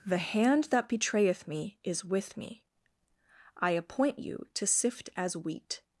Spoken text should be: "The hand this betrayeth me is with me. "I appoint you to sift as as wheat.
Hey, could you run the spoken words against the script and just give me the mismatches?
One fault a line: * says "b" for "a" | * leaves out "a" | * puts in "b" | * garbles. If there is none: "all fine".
* says "that" for "this"
* leaves out "as"